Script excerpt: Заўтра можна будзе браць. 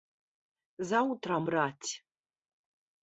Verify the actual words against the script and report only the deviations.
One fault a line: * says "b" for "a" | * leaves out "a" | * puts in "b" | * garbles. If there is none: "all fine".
* leaves out "можна будзе"